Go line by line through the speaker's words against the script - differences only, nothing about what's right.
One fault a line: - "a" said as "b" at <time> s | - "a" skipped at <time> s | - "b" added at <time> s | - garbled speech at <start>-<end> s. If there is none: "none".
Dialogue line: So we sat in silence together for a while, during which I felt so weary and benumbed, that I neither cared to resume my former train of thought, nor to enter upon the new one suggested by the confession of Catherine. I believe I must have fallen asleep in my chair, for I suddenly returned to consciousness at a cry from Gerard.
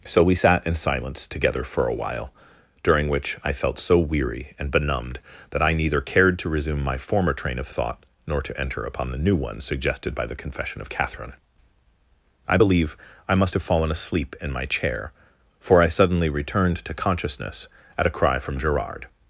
none